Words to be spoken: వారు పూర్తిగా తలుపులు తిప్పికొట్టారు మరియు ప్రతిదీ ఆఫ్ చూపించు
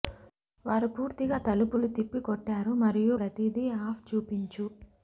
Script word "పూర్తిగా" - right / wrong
right